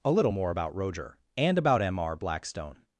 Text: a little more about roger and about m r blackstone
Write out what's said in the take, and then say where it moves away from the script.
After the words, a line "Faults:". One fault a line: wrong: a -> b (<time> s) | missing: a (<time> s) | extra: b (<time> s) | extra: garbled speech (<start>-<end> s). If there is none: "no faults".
a little more about roger and about m r blackstone
Faults:
no faults